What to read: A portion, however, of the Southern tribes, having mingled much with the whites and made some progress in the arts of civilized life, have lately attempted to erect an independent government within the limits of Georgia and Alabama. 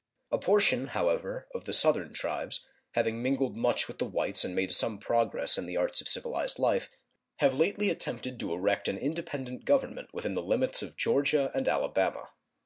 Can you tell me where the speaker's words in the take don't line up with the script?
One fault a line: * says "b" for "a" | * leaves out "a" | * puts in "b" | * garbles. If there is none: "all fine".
all fine